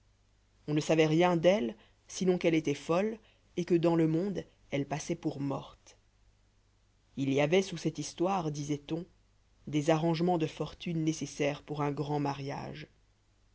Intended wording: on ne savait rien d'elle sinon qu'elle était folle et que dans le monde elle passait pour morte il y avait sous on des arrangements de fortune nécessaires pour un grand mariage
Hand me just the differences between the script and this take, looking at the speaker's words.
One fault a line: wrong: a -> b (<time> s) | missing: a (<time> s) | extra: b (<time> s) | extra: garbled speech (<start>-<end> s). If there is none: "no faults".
extra: cette histoire disait (7.8 s)